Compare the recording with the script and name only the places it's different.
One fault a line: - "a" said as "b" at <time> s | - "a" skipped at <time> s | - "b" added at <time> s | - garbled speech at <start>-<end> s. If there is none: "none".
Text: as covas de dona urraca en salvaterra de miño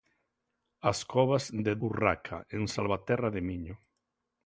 - "dona" skipped at 1.7 s